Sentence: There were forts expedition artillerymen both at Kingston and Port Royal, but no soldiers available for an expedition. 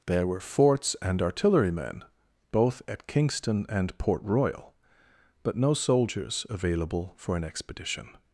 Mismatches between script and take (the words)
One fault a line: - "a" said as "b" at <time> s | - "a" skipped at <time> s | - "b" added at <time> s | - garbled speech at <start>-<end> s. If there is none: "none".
- "expedition" said as "and" at 1.0 s